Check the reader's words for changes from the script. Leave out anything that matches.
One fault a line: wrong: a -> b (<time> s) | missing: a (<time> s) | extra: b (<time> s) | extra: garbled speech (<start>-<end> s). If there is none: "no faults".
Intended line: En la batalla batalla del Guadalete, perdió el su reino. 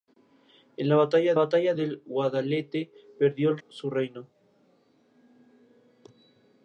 no faults